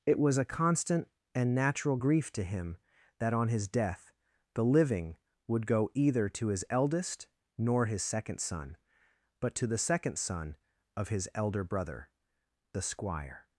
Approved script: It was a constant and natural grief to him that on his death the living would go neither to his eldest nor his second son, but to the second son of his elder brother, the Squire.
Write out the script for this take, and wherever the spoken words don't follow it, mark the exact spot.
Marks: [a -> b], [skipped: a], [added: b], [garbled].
It was a constant and natural grief to him that on his death the living would go [neither -> either] to his eldest nor his second son, but to the second son of his elder brother, the Squire.